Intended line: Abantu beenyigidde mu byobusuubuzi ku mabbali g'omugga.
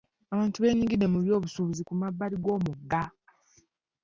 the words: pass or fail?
pass